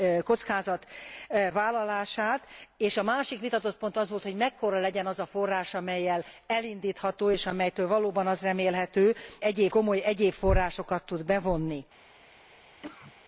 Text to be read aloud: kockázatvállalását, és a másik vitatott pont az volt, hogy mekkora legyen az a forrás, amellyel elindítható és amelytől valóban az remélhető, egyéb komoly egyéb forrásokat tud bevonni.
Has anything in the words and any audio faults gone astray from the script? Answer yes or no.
yes